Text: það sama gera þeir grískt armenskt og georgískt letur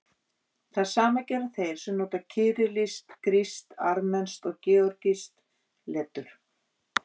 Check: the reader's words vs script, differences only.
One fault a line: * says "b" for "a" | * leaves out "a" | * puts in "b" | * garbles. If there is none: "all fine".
* puts in "sem nota kyrillískt"